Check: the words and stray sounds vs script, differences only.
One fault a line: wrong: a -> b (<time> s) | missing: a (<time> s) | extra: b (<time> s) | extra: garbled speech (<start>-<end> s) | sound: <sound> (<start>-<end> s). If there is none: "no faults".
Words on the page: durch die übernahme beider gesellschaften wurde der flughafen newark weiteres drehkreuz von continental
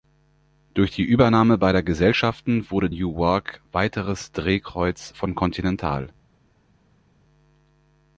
missing: der flughafen (2.9 s)